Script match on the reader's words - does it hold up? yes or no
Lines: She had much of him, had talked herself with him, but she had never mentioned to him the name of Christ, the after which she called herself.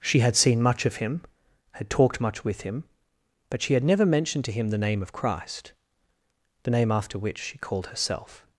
no